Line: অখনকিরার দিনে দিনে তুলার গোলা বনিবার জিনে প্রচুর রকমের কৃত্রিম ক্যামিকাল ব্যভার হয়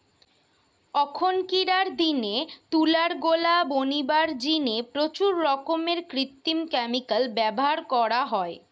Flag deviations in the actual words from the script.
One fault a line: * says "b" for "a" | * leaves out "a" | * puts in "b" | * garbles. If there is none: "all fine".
* leaves out "দিনে"
* puts in "করা"